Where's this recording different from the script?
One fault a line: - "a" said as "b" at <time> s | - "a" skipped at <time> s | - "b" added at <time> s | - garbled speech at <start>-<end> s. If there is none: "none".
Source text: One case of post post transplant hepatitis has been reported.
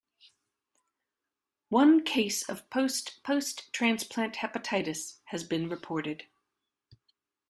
none